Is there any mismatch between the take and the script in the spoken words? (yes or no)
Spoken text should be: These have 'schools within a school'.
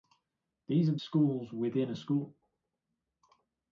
no